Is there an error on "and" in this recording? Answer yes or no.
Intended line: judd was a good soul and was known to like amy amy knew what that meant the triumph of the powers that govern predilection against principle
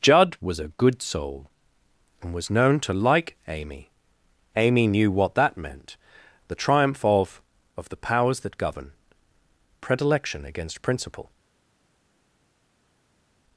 no